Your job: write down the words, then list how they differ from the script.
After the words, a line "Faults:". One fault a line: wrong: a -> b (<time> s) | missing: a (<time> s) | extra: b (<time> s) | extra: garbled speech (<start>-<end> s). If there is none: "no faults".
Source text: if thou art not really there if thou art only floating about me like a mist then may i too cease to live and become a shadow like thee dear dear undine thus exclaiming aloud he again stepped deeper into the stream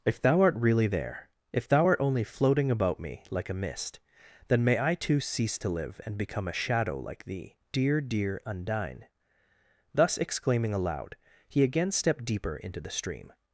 if thou art really there if thou art only floating about me like a mist then may i too cease to live and become a shadow like thee dear dear undine thus exclaiming aloud he again stepped deeper into the stream
Faults:
missing: not (0.6 s)